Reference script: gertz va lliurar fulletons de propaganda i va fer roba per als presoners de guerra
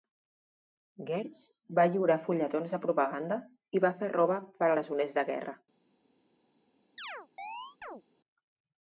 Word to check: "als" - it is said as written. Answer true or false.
false